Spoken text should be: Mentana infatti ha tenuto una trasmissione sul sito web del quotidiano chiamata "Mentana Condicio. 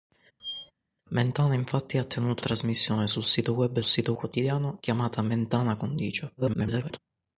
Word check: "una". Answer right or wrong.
wrong